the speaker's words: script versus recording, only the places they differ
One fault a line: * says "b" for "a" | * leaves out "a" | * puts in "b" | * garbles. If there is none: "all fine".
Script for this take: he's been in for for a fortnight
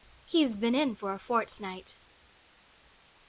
* leaves out "for"